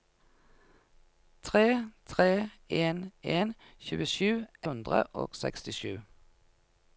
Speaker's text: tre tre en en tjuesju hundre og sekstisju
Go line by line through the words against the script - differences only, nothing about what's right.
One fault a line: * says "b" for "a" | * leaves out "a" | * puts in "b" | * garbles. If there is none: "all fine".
all fine